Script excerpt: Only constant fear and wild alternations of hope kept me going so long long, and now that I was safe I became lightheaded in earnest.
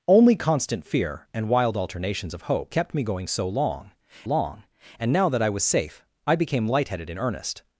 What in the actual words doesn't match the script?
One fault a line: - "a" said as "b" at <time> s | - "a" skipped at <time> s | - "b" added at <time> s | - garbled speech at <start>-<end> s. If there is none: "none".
none